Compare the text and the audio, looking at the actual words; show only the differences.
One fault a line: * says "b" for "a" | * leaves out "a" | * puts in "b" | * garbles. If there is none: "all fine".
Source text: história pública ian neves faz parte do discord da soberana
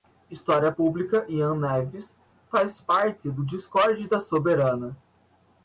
all fine